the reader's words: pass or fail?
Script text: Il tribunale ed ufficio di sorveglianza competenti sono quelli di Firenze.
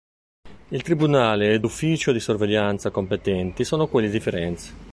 pass